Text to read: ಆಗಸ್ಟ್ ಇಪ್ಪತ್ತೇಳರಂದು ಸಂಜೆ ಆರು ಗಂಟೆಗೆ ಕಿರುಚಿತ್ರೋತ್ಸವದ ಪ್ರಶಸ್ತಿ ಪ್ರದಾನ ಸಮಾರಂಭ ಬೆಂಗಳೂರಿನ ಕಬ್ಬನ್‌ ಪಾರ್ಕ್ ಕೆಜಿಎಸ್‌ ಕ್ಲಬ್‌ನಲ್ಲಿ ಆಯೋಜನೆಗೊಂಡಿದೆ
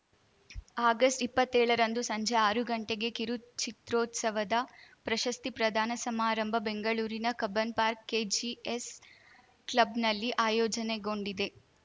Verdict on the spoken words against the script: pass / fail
pass